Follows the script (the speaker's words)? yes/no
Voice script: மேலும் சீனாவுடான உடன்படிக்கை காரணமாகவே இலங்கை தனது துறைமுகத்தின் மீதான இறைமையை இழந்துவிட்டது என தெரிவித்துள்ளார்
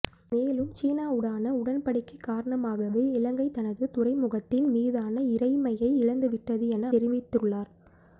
yes